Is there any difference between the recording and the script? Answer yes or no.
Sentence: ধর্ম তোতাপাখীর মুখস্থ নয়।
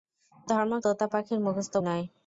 no